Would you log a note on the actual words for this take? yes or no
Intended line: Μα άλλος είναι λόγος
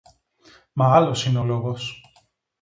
no